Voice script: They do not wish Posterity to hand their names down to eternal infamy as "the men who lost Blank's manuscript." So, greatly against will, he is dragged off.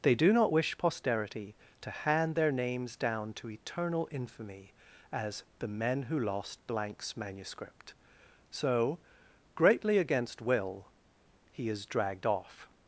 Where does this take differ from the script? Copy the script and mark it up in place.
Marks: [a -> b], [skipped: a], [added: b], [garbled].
They do not wish Posterity to hand their names down to eternal infamy as "the men who lost Blank's manuscript." So, greatly against will, he is dragged off.